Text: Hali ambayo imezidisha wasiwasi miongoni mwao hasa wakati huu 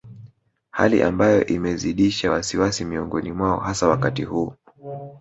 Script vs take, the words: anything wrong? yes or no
no